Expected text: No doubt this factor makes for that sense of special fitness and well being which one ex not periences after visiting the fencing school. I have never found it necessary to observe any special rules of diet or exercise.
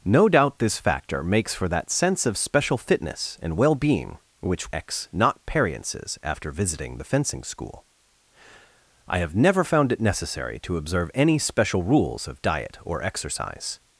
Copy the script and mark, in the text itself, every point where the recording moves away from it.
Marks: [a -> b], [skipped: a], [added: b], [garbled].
No doubt this factor makes for that sense of special fitness and well being which [skipped: one] ex not periences after visiting the fencing school. I have never found it necessary to observe any special rules of diet or exercise.